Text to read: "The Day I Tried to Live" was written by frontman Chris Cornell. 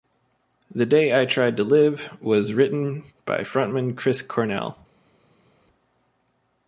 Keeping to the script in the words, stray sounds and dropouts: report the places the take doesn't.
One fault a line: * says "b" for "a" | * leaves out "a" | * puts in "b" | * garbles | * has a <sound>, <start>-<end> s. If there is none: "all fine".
all fine